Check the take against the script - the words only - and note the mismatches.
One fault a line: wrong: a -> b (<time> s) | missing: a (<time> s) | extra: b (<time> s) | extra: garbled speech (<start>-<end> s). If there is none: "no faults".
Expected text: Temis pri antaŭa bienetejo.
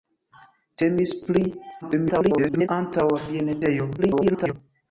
extra: garbled speech (1.8-2.7 s)
extra: garbled speech (4.0-4.5 s)